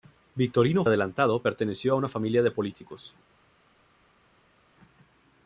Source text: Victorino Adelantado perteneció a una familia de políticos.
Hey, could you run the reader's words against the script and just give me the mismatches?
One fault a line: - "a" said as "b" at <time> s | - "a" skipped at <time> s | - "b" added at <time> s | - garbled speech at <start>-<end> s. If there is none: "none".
none